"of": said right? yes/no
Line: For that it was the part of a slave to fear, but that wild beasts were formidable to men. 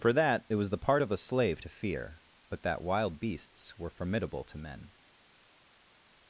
yes